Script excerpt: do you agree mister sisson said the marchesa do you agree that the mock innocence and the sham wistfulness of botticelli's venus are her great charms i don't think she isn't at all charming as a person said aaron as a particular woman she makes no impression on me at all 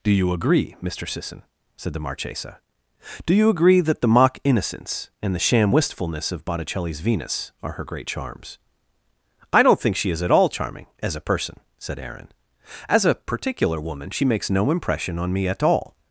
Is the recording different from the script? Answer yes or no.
yes